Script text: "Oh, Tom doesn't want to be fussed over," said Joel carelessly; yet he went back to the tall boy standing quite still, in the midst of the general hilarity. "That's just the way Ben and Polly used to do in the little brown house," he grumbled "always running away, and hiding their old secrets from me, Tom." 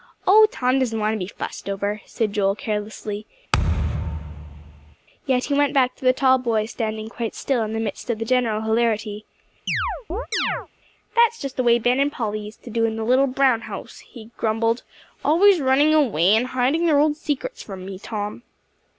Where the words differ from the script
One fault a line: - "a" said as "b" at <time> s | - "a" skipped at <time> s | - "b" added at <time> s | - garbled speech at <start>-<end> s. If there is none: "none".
none